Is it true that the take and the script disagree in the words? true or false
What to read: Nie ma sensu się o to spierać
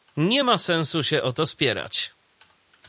false